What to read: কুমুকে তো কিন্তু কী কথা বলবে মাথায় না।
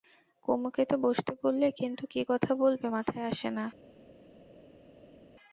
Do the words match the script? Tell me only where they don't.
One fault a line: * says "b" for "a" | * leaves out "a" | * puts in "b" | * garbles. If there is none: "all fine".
* puts in "বসতে বললে"
* puts in "আসে"